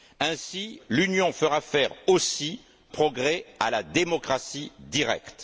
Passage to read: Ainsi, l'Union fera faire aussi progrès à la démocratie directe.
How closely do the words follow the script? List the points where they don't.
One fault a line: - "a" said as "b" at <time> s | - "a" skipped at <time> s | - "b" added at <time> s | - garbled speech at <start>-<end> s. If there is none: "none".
none